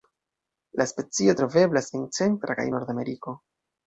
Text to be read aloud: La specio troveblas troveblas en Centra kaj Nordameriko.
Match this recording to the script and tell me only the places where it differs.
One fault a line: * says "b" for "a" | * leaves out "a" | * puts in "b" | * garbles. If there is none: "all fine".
* leaves out "troveblas"